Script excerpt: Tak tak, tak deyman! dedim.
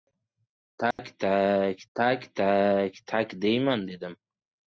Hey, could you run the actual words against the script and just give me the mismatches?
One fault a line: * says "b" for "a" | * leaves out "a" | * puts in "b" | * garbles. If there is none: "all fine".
* puts in "tak tak"